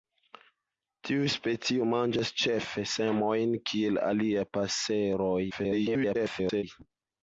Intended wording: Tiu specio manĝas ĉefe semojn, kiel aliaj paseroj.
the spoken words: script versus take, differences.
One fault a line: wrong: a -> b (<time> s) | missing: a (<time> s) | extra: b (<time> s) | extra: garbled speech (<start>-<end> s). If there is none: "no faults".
extra: garbled speech (5.5-6.6 s)